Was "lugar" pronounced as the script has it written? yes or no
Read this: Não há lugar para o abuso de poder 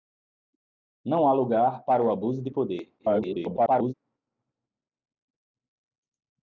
yes